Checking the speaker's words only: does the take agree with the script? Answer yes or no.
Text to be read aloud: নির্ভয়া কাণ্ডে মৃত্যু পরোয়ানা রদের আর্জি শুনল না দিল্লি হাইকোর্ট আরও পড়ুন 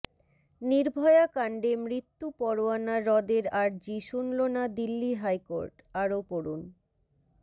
yes